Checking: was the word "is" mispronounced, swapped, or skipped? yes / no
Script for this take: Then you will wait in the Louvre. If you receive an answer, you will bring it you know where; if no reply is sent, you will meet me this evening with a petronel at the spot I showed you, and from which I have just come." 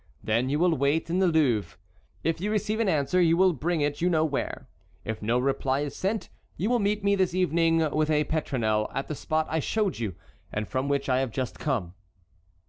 no